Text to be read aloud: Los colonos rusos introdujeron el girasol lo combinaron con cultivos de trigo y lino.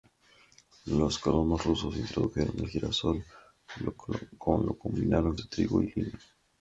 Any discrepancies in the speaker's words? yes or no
yes